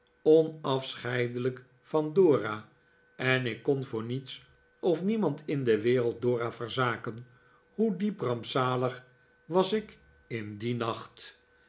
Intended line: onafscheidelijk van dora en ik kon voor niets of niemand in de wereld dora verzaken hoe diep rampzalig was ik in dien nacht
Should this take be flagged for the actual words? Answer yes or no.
no